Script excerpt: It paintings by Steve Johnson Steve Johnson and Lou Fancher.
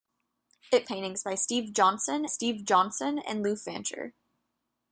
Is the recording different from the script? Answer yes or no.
no